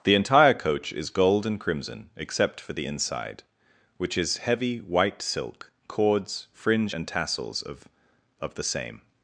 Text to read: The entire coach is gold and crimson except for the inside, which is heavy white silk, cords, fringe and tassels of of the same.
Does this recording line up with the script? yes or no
yes